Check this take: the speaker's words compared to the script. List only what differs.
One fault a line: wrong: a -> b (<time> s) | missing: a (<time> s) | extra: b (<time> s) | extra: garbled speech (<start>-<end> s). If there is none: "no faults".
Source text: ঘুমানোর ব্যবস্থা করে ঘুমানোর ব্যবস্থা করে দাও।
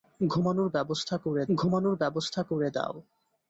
no faults